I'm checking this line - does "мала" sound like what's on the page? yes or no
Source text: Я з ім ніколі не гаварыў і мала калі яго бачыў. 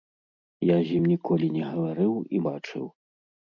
no